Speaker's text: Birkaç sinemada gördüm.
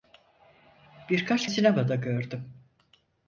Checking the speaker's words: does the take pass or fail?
pass